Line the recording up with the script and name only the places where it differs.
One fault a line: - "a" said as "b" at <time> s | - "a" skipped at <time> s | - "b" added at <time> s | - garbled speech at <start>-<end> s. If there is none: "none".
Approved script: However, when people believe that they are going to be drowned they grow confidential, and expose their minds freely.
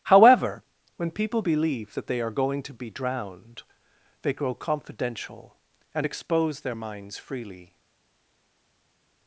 none